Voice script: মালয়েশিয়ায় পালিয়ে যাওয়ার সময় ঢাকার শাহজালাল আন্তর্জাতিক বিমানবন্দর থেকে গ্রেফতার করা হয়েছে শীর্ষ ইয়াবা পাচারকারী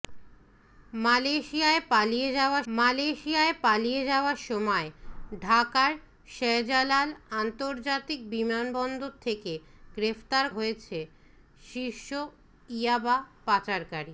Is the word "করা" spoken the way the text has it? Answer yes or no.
no